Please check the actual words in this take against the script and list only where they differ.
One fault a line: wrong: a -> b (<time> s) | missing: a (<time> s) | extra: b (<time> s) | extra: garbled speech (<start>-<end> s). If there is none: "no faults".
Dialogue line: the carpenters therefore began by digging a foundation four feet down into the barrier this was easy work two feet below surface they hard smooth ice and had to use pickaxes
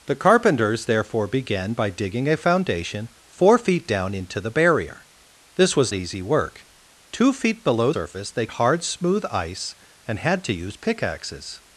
no faults